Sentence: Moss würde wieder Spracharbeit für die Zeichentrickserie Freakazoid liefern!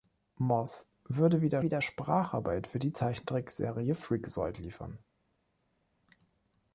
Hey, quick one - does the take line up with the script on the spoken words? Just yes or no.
no